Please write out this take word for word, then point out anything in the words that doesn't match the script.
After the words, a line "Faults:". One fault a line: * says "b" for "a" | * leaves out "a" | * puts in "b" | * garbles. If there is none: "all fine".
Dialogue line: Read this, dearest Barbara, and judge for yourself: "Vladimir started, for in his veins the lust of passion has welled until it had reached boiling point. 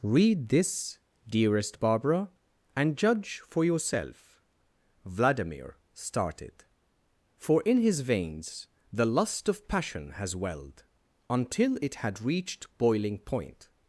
Read this, dearest Barbara, and judge for yourself: "Vladimir started, for in his veins the lust of passion has welled until it had reached boiling point.
Faults:
all fine